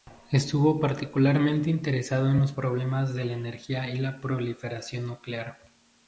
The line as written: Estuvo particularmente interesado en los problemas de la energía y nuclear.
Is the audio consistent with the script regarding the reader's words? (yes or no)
no